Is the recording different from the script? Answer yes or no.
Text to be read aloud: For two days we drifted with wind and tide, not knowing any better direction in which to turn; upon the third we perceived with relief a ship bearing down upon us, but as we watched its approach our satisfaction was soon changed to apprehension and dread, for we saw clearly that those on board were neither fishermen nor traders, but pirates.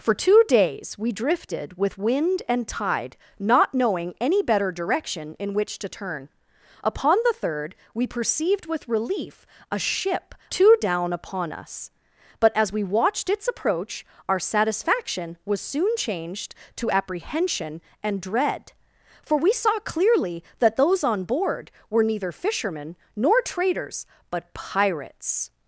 yes